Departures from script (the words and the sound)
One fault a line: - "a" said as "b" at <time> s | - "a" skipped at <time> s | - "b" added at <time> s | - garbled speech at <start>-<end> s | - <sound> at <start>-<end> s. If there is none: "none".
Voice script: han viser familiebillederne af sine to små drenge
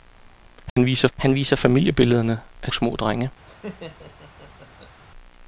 - dropout at 0.7-0.8 s
- "han viser" added at 1.2 s
- "sine to" skipped at 2.7 s
- laugh at 3.4-5.0 s